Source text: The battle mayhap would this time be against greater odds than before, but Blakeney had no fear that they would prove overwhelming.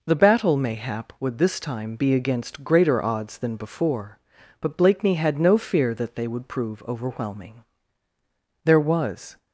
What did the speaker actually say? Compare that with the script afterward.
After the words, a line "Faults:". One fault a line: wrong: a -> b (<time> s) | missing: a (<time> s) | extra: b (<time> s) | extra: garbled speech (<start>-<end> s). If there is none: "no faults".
The battle mayhap would this time be against greater odds than before, but Blakeney had no fear that they would prove overwhelming. There was
Faults:
extra: There was (8.6 s)